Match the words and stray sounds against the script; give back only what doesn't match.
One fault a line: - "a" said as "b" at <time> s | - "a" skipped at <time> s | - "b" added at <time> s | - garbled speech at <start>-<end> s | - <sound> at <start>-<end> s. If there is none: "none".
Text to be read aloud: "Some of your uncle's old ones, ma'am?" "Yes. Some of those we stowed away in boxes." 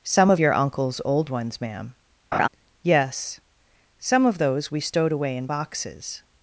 - laugh at 2.3-2.5 s